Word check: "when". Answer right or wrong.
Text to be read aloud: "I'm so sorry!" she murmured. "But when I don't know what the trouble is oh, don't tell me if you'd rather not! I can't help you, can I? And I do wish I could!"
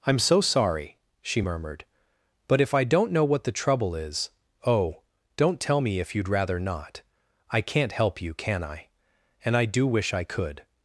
wrong